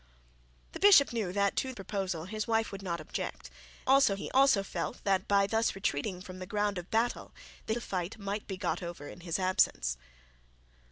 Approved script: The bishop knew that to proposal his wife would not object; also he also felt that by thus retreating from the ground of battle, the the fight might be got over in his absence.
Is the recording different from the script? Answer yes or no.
no